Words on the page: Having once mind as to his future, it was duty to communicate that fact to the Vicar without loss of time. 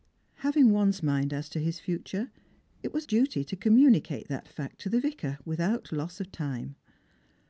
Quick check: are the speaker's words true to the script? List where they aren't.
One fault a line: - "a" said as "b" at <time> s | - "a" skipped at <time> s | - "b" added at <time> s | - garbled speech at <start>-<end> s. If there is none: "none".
none